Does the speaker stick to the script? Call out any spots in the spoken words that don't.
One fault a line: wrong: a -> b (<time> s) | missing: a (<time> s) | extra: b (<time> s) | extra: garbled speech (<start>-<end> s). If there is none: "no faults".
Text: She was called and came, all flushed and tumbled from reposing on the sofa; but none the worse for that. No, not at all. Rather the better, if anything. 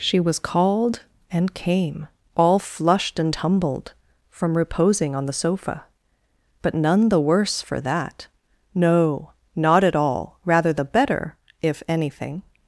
no faults